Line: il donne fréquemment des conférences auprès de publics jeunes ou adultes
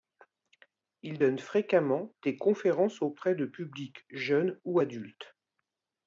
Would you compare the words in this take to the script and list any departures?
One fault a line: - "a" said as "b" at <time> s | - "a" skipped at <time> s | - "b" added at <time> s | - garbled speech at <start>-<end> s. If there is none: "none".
none